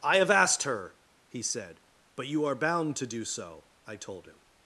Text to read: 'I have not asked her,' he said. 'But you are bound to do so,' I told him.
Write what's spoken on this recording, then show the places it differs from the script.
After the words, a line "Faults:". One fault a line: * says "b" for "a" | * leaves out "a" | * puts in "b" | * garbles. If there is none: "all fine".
'I have asked her,' he said. 'But you are bound to do so,' I told him.
Faults:
* leaves out "not"